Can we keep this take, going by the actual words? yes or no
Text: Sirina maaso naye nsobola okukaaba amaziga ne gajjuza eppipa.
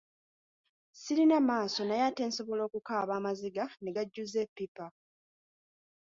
no